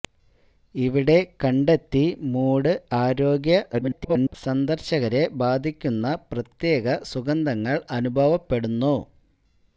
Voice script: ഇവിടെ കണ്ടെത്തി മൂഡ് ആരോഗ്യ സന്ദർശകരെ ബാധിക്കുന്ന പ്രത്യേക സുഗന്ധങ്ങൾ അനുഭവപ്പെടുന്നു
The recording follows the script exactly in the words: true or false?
false